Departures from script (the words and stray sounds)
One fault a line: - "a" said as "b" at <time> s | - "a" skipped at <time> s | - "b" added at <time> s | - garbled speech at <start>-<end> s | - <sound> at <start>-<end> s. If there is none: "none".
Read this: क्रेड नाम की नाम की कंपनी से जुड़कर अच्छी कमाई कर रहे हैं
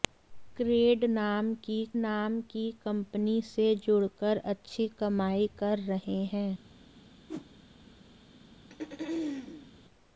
- whoosh at 7.3-7.5 s
- throat clearing at 8.7-9.7 s